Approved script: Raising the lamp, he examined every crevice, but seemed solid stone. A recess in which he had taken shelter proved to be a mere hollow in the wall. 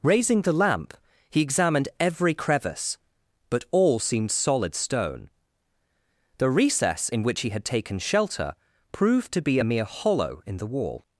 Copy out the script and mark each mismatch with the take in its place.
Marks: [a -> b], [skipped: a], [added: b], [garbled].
Raising the lamp, he examined every crevice, but [added: all] seemed solid stone. [A -> The] recess in which he had taken shelter proved to be a mere hollow in the wall.